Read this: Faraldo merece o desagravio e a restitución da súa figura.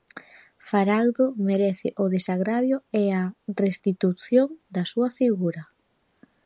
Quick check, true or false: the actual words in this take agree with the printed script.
true